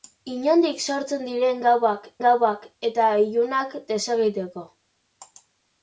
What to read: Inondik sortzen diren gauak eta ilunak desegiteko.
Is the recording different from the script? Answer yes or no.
yes